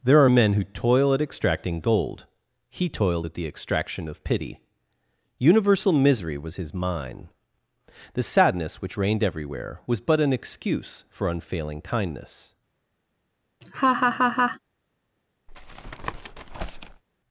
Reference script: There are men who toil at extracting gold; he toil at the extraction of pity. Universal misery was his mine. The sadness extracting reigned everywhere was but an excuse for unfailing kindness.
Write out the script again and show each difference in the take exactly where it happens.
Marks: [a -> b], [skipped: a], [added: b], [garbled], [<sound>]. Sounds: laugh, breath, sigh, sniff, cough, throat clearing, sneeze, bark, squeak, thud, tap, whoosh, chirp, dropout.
There are men who toil at extracting gold; he [toil -> toiled] at the extraction of pity. Universal misery was his mine. The sadness [extracting -> which] reigned everywhere was but an excuse for unfailing kindness. [laugh] [tap]